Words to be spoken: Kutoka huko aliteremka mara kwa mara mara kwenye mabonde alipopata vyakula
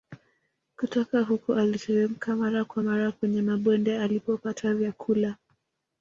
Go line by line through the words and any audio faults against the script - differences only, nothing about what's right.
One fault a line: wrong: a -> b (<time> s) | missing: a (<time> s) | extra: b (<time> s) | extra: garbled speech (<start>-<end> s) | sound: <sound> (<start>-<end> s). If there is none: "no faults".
missing: mara (3.1 s)